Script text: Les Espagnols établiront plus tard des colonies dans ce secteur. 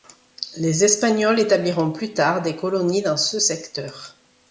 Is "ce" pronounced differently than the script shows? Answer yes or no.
no